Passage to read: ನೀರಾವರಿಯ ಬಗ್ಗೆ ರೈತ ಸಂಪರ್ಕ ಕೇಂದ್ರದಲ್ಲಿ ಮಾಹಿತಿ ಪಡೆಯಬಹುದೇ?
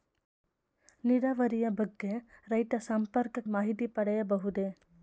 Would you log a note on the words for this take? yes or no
yes